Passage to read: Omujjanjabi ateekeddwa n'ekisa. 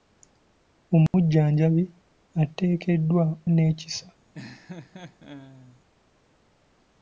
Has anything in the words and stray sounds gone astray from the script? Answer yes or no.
yes